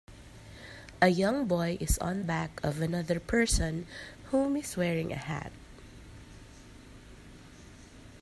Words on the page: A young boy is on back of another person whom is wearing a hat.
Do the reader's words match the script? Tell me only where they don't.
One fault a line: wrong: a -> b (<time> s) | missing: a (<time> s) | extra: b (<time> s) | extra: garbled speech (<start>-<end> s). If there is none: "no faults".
no faults